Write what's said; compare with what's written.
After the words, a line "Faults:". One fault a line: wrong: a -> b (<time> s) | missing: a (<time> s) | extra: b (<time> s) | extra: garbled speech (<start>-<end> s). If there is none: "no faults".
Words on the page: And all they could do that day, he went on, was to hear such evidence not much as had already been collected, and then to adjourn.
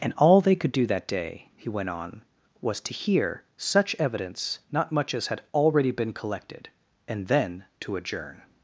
And all they could do that day, he went on, was to hear such evidence not much as had already been collected, and then to adjourn.
Faults:
no faults